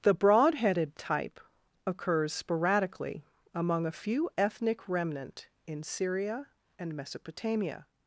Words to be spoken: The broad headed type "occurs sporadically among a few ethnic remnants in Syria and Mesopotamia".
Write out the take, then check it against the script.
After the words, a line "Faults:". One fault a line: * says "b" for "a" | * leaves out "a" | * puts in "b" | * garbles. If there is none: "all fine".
The broad headed type "occurs sporadically among a few ethnic remnant in Syria and Mesopotamia".
Faults:
* says "remnant" for "remnants"